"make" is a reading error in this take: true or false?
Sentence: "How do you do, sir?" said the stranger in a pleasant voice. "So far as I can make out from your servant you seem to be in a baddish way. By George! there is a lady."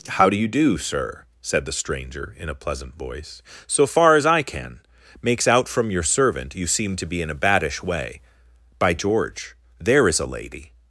true